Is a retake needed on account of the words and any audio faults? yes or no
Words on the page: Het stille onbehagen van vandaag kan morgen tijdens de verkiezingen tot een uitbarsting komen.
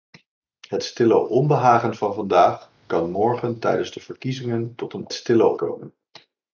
yes